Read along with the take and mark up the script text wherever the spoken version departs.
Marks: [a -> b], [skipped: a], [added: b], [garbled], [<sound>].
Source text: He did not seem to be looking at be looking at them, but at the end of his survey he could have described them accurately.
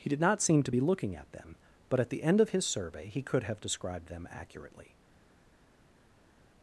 He did not seem to be looking at [skipped: be looking at] them, but at the end of his survey he could have described them accurately.